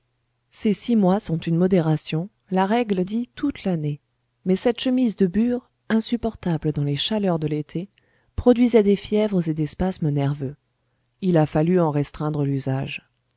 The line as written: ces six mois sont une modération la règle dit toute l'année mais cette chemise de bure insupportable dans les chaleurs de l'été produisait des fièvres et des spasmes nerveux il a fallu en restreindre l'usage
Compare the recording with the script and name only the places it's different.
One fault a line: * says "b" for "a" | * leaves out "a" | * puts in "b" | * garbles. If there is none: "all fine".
all fine